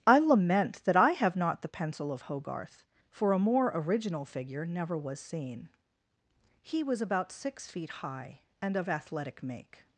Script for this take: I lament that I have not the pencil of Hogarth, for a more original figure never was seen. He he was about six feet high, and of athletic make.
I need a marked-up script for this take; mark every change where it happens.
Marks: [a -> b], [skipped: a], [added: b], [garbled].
I lament that I have not the pencil of Hogarth, for a more original figure never was seen. He [skipped: he] was about six feet high, and of athletic make.